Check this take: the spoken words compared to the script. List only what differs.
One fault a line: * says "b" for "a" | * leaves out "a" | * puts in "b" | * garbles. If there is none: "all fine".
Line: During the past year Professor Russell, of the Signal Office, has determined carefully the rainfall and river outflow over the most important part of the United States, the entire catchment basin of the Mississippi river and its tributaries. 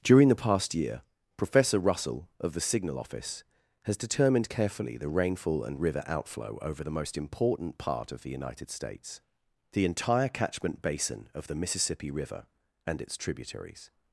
all fine